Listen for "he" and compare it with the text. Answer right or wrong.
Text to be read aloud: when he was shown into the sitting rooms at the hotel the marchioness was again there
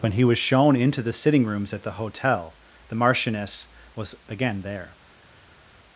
right